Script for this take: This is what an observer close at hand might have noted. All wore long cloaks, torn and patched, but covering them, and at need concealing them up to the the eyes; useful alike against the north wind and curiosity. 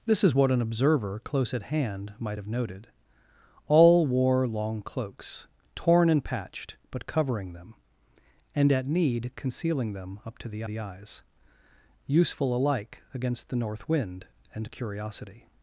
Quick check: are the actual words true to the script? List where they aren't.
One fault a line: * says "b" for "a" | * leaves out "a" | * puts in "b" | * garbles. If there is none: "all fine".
all fine